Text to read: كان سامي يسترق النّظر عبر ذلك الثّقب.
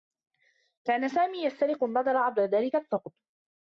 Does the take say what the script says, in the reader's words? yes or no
yes